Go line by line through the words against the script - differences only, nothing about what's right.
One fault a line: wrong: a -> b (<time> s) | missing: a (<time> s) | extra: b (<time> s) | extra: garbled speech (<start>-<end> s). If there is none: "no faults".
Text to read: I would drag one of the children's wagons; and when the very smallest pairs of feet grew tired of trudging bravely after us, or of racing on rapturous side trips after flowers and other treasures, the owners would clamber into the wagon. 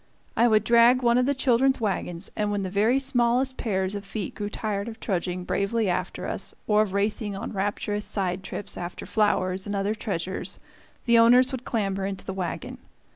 no faults